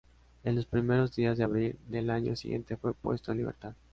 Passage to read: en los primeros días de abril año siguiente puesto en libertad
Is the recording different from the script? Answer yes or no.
yes